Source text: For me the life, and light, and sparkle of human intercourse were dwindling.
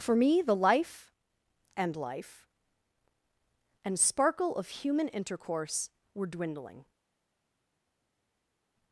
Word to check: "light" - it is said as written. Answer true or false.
false